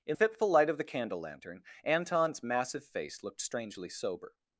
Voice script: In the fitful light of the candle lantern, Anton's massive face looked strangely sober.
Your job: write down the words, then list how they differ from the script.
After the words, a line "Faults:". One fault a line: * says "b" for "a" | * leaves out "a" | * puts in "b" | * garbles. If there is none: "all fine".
In fitful light of the candle lantern, Anton's massive face looked strangely sober.
Faults:
* leaves out "the"